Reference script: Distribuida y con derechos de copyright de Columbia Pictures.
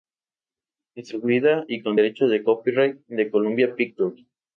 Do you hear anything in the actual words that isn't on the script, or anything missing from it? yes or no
no